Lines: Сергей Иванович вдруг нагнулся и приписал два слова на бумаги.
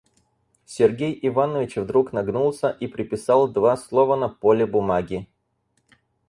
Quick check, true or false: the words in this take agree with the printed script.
false